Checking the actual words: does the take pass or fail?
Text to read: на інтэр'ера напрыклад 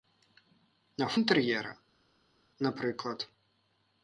pass